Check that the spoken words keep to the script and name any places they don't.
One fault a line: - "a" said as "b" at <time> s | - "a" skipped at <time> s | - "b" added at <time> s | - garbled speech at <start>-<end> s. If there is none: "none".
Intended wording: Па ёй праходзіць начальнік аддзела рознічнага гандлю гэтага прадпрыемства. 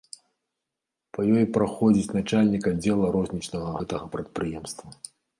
- "гандлю" skipped at 3.7 s